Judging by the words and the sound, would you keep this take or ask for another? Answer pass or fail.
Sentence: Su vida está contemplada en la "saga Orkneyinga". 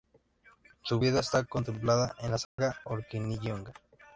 fail